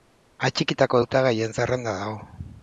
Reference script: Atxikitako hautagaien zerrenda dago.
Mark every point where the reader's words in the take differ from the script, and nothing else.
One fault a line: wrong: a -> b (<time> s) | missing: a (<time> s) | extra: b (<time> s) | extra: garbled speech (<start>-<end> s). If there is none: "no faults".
no faults